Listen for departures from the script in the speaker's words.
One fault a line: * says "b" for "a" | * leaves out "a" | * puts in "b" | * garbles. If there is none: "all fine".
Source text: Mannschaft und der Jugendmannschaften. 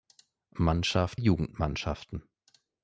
* leaves out "und der"